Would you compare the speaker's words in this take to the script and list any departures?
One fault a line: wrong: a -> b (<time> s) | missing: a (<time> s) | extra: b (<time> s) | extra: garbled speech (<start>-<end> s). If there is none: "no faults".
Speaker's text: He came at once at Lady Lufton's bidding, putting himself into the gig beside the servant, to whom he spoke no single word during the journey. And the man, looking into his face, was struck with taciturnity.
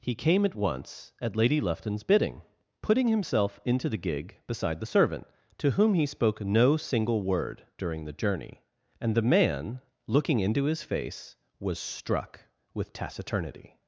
no faults